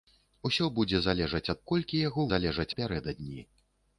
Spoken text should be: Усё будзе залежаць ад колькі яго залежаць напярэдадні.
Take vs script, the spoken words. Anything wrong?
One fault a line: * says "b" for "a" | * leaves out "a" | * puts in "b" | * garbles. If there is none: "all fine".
all fine